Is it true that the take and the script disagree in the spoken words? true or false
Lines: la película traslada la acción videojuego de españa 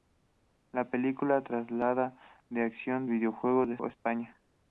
false